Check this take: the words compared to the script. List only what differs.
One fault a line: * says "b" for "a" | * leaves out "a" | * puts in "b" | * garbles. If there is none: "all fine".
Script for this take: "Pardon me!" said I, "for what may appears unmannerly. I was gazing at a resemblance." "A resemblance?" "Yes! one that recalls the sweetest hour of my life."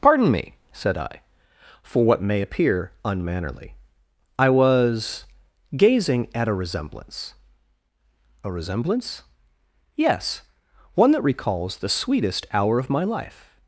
* says "appear" for "appears"